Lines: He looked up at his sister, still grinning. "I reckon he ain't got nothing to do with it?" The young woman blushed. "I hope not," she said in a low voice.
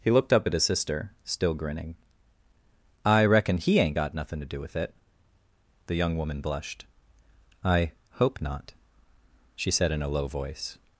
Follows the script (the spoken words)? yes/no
yes